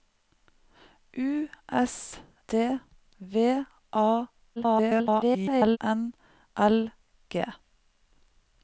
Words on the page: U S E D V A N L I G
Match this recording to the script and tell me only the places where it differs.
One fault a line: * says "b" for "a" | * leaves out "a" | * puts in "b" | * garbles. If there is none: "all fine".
* leaves out "E"
* garbles
* leaves out "I"